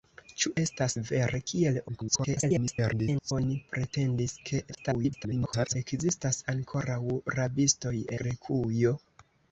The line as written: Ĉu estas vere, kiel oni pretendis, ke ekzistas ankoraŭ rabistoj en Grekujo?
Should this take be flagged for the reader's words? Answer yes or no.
yes